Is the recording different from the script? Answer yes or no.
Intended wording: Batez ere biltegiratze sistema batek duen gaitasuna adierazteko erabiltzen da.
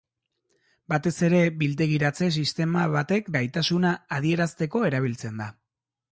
yes